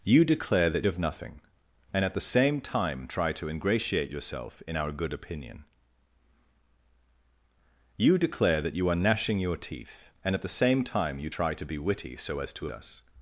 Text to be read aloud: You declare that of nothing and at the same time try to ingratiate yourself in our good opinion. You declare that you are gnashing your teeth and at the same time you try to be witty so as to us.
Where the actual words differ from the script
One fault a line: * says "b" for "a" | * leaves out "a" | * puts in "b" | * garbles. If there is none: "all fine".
all fine